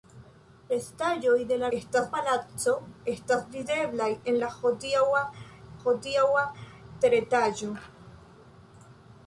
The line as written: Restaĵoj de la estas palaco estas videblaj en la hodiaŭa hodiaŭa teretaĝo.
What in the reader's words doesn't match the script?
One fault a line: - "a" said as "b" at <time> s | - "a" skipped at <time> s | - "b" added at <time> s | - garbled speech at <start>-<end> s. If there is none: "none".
none